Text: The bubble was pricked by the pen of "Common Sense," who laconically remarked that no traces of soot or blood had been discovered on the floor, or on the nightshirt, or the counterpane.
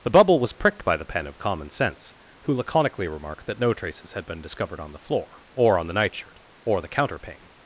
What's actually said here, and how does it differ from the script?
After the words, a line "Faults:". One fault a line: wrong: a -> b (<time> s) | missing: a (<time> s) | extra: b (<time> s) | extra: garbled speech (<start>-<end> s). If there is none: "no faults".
The bubble was pricked by the pen of "Common Sense," who laconically remarked that no traces had been discovered on the floor, or on the nightshirt, or the counterpane.
Faults:
missing: of soot or blood (4.1 s)